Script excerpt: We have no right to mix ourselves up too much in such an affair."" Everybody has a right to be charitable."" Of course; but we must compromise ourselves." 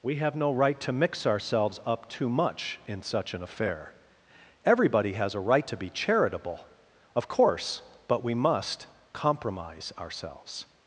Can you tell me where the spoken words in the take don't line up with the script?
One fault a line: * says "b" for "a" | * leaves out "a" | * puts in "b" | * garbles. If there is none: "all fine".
all fine